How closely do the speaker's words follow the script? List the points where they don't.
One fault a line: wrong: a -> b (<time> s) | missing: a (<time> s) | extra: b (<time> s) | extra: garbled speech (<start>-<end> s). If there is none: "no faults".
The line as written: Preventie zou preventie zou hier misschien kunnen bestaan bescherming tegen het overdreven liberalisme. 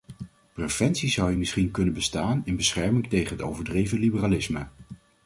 missing: preventie zou (1.3 s)
extra: in (2.4 s)